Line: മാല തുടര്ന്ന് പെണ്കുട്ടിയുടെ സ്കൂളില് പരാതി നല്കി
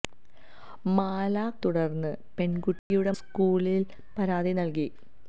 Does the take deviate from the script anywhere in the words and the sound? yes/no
yes